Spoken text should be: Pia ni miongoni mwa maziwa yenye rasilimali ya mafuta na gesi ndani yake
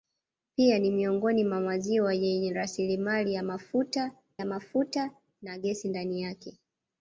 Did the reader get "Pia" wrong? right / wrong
right